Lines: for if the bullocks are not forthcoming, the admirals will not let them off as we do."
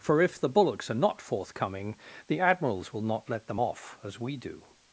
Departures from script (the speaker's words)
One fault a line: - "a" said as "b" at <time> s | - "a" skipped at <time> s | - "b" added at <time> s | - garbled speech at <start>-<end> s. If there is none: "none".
none